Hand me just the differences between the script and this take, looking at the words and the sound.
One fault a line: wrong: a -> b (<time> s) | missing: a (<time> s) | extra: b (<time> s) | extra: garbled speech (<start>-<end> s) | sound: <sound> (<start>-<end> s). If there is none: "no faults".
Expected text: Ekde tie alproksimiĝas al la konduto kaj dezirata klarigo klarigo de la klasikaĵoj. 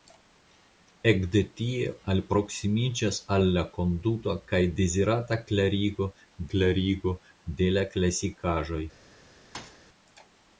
sound: thud (9.5-9.8 s)